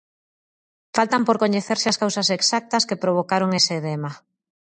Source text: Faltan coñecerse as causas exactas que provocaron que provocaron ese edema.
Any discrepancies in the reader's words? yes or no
yes